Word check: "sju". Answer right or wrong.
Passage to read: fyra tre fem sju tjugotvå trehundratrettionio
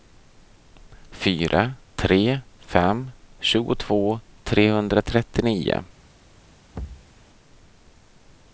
wrong